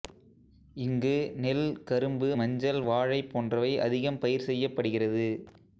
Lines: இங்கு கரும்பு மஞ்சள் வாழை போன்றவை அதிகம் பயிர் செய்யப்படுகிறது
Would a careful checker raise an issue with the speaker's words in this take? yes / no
yes